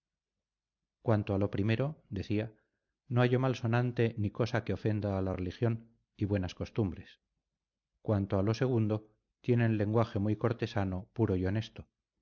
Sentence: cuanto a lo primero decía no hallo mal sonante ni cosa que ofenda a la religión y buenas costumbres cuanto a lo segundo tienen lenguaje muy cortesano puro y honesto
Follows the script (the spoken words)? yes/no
yes